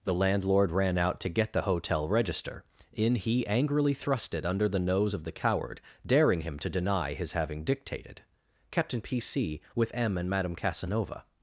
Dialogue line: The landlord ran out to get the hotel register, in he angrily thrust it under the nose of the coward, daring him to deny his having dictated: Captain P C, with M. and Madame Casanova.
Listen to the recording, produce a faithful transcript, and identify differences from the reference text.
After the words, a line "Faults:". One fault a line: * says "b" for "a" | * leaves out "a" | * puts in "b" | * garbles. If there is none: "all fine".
The landlord ran out to get the hotel register, in he angrily thrust it under the nose of the coward, daring him to deny his having dictated: Captain P C, with M. and Madame Casanova.
Faults:
all fine